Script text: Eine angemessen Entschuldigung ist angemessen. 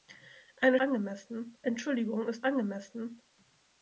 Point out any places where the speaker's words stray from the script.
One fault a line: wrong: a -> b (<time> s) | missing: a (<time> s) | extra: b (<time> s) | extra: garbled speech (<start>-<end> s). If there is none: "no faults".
no faults